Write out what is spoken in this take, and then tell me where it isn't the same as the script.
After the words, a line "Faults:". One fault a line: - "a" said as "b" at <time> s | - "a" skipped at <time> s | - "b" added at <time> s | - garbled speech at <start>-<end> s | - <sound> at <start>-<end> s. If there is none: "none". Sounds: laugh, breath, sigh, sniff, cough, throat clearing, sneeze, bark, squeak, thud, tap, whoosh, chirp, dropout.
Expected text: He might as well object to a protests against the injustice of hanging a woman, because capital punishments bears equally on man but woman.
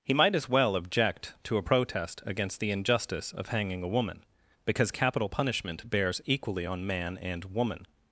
He might as well object to a protest against the injustice of hanging a woman, because capital punishment bears equally on man and woman.
Faults:
- "protests" said as "protest" at 1.6 s
- "punishments" said as "punishment" at 5.3 s
- "but" said as "and" at 7.2 s